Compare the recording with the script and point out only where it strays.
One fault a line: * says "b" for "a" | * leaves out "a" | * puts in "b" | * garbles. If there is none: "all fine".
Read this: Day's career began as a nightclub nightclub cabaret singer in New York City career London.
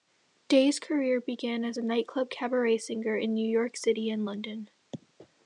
* leaves out "nightclub"
* says "and" for "career"